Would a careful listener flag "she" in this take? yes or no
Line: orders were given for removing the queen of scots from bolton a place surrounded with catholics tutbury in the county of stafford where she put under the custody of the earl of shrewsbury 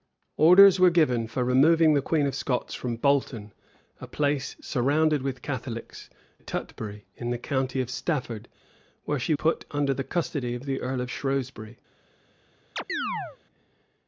no